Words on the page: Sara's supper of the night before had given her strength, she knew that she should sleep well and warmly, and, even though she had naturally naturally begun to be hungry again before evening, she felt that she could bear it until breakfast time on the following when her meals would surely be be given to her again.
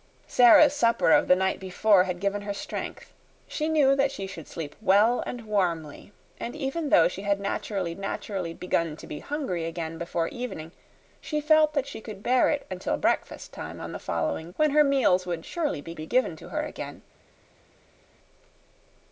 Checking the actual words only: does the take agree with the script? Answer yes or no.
yes